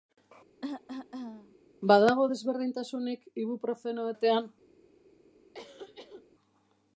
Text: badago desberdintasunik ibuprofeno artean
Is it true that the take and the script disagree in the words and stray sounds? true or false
true